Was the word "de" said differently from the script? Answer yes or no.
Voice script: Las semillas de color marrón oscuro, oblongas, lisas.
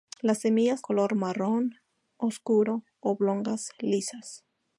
yes